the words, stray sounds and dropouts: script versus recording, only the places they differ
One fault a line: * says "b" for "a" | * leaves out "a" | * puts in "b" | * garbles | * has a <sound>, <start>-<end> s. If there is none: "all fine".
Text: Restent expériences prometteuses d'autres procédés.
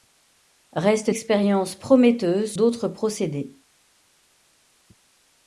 all fine